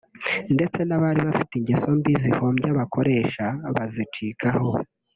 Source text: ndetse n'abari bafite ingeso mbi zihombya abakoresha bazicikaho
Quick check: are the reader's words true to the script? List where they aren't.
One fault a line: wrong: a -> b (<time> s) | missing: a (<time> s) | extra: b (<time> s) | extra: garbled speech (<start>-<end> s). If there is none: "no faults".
no faults